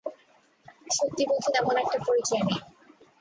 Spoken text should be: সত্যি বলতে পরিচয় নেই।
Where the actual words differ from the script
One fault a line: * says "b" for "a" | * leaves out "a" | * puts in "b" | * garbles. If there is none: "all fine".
* puts in "তেমন একটা"